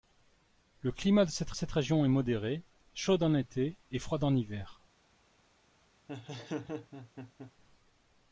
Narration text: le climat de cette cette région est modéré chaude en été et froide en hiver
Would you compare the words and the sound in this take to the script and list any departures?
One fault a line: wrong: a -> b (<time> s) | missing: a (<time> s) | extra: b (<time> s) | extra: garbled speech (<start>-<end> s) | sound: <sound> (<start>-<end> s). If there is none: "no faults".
sound: laugh (6.1-7.5 s)